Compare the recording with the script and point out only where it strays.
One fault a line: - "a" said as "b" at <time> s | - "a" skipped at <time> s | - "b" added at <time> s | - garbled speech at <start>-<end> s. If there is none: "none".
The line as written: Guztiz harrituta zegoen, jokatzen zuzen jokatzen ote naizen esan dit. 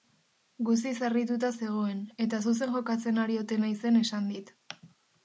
- "jokatzen" said as "eta" at 2.2 s
- "ari" added at 3.2 s